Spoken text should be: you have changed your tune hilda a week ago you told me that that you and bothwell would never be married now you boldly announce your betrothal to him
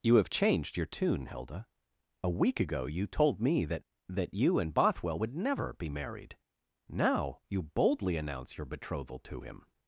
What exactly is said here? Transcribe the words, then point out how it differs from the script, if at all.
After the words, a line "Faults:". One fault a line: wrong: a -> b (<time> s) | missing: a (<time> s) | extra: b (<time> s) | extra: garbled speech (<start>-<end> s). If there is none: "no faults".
you have changed your tune hilda a week ago you told me that that you and bothwell would never be married now you boldly announce your betrothal to him
Faults:
no faults